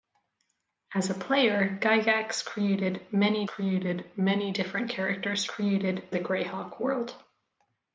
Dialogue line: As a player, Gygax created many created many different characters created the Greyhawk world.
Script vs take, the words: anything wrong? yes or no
no